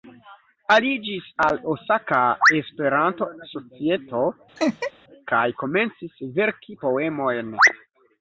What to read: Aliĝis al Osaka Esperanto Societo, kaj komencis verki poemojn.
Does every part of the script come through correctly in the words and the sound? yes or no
no